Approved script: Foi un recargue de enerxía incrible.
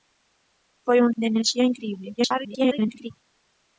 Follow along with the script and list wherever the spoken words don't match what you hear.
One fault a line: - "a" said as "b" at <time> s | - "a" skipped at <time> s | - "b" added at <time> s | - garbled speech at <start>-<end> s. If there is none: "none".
- "recargue" skipped at 1.1 s
- garbled speech at 2.2-3.1 s